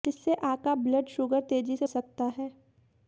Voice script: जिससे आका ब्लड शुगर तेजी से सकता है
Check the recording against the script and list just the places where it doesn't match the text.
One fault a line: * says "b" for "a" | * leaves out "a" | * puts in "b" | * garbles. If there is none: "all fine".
all fine